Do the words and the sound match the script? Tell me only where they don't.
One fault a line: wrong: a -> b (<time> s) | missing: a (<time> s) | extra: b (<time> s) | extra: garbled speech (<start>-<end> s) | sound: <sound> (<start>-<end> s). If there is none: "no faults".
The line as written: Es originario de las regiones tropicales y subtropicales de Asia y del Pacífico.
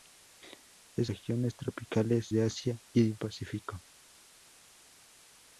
missing: originario de las (1.1 s)
missing: y subtropicales (2.3 s)
missing: del (3.1 s)